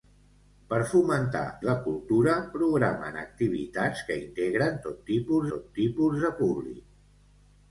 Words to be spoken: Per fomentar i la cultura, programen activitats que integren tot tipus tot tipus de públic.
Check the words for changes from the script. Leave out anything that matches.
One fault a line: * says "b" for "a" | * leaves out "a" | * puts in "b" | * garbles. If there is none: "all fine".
all fine